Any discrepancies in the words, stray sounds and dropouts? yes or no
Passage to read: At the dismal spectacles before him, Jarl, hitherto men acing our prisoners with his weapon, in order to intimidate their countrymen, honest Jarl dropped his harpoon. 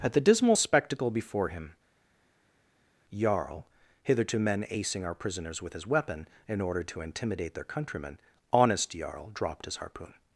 yes